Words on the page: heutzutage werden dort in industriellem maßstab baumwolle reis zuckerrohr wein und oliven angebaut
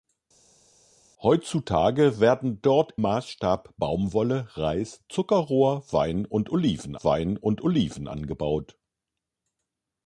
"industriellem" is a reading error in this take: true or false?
true